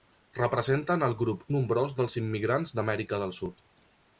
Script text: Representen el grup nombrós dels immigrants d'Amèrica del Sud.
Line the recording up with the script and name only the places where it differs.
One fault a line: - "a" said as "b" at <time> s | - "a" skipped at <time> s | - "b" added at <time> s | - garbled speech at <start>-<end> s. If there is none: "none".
none